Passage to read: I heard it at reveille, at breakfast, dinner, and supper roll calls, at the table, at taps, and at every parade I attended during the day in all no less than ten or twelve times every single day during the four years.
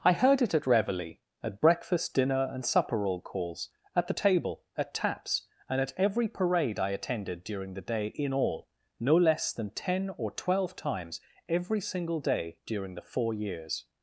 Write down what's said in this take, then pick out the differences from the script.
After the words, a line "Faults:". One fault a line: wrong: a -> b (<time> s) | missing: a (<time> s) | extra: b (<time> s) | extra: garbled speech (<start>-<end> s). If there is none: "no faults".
I heard it at reveille, at breakfast, dinner, and supper roll calls, at the table, at taps, and at every parade I attended during the day in all no less than ten or twelve times every single day during the four years.
Faults:
no faults